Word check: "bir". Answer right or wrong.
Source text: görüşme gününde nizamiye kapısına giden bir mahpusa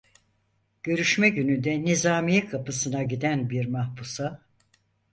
right